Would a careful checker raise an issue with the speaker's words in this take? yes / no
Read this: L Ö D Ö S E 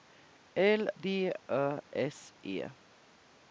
yes